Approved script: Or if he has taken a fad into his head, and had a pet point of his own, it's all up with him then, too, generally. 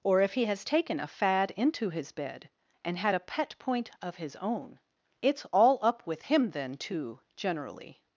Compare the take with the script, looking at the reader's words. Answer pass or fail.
fail